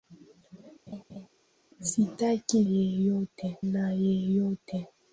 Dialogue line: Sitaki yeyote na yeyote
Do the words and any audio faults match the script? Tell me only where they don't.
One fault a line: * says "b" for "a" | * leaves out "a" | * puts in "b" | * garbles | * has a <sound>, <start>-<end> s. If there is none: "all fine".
* has a laugh, 0.9-1.3 s